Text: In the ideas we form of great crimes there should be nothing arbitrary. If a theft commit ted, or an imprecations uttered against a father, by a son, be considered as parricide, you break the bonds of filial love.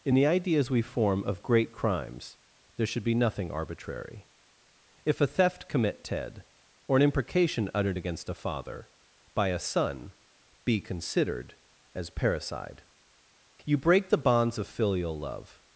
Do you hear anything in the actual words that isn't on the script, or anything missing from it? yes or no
yes